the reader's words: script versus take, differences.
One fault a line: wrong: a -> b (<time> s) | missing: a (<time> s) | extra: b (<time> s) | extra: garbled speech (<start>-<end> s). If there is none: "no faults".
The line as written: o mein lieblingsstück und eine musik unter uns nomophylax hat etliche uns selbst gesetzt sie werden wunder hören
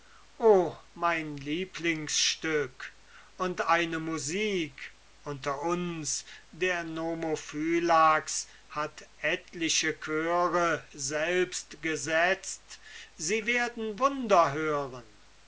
extra: der (6.5 s)
wrong: uns -> chöre (10.0 s)